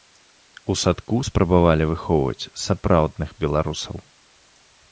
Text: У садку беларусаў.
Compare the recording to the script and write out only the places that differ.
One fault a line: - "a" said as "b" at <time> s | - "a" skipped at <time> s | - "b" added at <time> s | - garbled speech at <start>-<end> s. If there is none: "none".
- "спрабавалі выхоўваць сапраўдных" added at 1.3 s